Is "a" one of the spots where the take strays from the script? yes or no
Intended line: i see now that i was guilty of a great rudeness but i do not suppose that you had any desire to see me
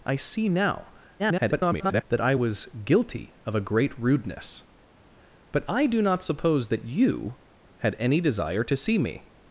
no